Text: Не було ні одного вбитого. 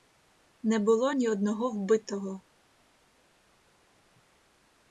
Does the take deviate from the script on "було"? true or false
false